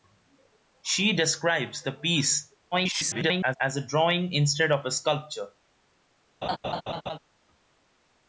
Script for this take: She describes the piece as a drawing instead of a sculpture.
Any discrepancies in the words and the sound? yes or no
yes